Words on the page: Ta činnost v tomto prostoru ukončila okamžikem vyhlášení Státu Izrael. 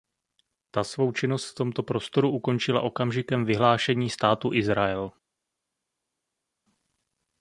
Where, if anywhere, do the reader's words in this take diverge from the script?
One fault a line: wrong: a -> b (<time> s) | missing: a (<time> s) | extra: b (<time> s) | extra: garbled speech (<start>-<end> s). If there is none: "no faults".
extra: svou (0.8 s)